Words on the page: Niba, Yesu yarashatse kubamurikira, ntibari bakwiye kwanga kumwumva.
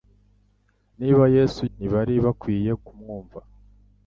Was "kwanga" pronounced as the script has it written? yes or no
no